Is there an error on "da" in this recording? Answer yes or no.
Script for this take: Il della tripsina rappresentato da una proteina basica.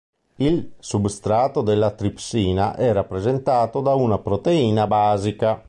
no